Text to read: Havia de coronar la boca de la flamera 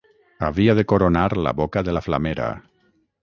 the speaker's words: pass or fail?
pass